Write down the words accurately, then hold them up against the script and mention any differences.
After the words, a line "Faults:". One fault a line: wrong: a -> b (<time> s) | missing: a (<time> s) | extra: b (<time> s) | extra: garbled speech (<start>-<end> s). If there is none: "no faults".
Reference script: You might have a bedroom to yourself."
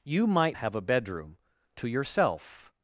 You might have a bedroom to yourself."
Faults:
no faults